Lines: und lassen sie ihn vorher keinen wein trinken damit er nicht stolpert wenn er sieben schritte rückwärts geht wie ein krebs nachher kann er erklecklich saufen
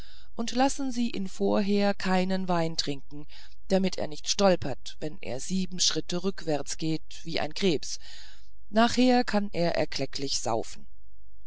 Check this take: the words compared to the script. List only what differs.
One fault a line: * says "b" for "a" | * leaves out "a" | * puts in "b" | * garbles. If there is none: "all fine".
all fine